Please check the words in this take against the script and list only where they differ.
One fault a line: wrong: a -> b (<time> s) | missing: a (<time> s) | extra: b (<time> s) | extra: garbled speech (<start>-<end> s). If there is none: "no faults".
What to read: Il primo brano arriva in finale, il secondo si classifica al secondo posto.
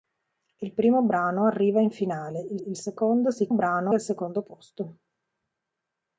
extra: il (2.6 s)
wrong: classifica -> brano (3.5 s)